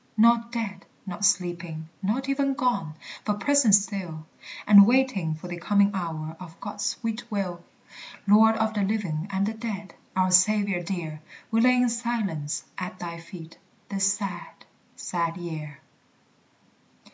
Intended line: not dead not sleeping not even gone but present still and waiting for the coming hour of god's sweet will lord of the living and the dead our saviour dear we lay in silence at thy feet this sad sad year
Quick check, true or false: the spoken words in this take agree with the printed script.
true